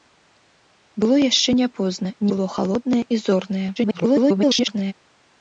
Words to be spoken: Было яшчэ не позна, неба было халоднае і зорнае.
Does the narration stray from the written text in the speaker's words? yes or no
yes